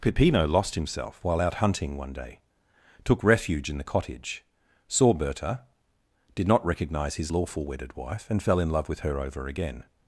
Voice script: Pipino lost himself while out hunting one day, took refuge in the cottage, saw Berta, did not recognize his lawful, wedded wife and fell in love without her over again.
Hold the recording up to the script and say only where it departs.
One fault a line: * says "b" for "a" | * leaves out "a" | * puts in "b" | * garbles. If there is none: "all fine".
* says "with" for "without"